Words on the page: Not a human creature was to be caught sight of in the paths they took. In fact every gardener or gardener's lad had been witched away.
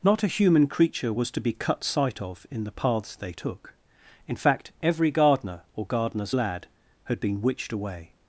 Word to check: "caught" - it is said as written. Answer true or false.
false